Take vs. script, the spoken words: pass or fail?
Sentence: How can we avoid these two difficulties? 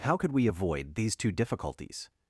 fail